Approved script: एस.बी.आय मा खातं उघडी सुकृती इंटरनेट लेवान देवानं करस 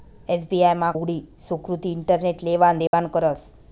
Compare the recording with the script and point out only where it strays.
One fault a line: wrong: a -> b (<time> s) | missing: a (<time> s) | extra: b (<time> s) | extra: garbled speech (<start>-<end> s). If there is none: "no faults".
missing: खातं (0.9 s)